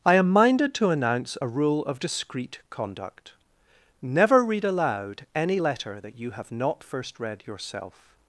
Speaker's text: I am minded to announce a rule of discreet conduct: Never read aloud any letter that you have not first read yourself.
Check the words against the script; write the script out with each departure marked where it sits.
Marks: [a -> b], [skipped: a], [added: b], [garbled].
I am minded to announce a rule of discreet conduct: Never read aloud any letter that you have not first read yourself.